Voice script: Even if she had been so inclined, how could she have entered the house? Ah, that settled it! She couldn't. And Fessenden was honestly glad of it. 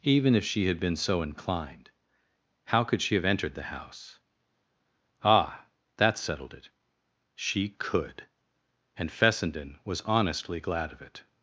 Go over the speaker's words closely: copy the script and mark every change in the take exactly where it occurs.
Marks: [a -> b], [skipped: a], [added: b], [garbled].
Even if she had been so inclined, how could she have entered the house? Ah, that settled it! She [couldn't. -> could] And Fessenden was honestly glad of it.